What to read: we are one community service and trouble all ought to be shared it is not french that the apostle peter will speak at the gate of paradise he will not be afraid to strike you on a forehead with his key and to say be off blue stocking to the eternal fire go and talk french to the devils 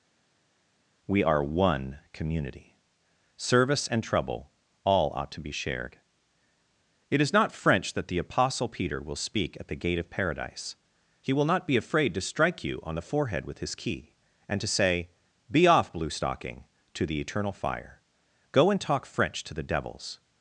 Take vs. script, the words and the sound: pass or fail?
fail